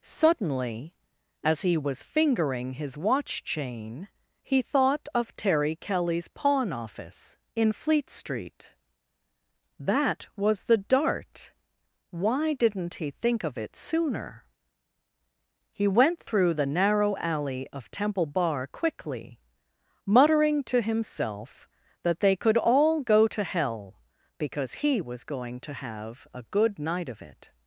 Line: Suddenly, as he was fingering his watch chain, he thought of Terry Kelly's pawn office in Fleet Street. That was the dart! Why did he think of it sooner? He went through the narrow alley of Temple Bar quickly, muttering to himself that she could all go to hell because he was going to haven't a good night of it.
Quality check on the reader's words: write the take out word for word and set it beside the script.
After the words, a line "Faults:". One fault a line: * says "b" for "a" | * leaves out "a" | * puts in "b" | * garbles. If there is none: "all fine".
Suddenly, as he was fingering his watch chain, he thought of Terry Kelly's pawn office in Fleet Street. That was the dart! Why didn't he think of it sooner? He went through the narrow alley of Temple Bar quickly, muttering to himself that they could all go to hell because he was going to have a good night of it.
Faults:
* says "didn't" for "did"
* says "they" for "she"
* says "have" for "haven't"